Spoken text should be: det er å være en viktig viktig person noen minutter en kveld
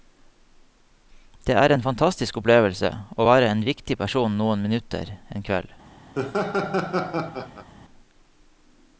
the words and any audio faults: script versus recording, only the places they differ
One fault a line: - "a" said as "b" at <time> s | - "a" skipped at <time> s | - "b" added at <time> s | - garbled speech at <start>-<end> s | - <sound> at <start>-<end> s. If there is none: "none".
- "en fantastisk opplevelse" added at 1.7 s
- "viktig" skipped at 4.0 s
- laugh at 6.1-7.7 s